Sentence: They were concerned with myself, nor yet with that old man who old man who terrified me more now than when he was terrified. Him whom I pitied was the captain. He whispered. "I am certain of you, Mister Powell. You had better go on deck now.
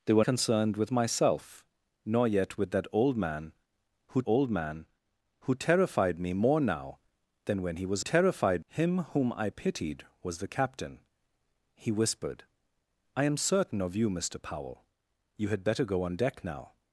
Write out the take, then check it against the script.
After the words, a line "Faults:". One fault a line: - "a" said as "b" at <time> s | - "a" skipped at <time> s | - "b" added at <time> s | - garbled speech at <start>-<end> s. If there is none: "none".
They were concerned with myself, nor yet with that old man who old man who terrified me more now than when he was terrified. Him whom I pitied was the captain. He whispered. "I am certain of you, Mister Powell. You had better go on deck now.
Faults:
none